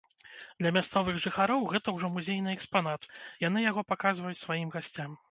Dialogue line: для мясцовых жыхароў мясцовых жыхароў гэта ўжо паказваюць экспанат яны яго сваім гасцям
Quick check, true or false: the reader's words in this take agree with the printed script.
false